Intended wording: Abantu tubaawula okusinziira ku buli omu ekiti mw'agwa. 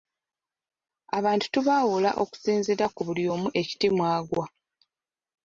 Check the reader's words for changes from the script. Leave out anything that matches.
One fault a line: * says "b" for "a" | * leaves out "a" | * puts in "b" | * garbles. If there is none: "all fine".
all fine